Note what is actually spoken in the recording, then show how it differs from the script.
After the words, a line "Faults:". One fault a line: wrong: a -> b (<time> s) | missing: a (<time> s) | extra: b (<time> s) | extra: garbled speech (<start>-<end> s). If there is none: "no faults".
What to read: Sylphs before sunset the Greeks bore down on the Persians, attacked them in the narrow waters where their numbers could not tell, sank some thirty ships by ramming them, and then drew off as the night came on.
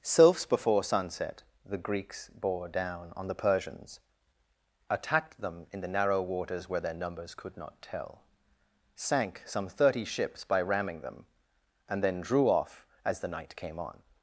Sylphs before sunset the Greeks bore down on the Persians, attacked them in the narrow waters where their numbers could not tell, sank some thirty ships by ramming them, and then drew off as the night came on.
Faults:
no faults